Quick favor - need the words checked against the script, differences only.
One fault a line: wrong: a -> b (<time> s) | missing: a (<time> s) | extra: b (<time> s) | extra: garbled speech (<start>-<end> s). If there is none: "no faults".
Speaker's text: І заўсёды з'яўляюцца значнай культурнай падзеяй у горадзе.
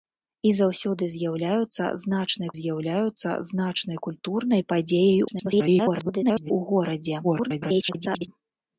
extra: з'яўляюцца значнай (2.6 s)
extra: garbled speech (5.3-6.5 s)
extra: garbled speech (7.2-8.3 s)